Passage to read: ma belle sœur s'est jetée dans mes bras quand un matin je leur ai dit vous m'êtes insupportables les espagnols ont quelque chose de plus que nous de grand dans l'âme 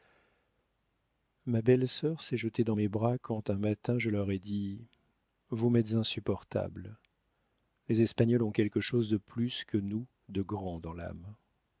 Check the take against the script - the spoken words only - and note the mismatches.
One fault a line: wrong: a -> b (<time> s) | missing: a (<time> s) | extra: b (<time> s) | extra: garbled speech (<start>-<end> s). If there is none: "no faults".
no faults